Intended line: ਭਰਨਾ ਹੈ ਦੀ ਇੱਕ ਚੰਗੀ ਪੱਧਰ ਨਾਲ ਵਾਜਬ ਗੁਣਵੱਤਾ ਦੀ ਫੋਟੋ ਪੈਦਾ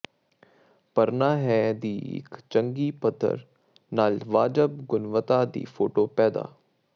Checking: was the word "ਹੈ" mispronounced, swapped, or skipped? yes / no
no